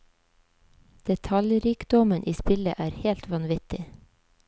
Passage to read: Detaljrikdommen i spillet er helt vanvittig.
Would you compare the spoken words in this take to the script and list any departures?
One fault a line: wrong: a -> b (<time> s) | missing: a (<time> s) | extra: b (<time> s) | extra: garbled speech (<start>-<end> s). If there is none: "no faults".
no faults